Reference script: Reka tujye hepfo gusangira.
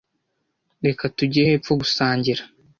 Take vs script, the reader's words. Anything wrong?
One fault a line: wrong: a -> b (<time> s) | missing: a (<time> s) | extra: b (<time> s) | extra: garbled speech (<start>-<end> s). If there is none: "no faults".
no faults